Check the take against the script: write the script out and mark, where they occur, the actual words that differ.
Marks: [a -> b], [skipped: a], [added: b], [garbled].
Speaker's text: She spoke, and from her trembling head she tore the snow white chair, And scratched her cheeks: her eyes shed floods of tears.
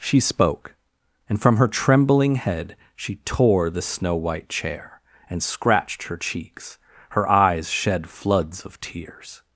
She spoke, and from her trembling head she tore the snow white chair, And scratched her cheeks: her eyes shed floods of tears.